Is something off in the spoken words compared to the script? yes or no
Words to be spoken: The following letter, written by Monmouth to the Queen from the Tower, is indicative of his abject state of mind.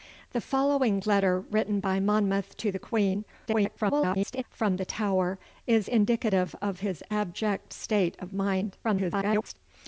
yes